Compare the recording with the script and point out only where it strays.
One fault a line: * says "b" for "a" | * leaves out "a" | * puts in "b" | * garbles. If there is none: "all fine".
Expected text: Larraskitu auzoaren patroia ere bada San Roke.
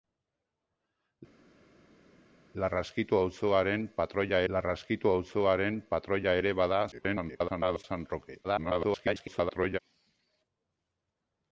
* puts in "larraskitu auzoaren patroia"
* garbles
* garbles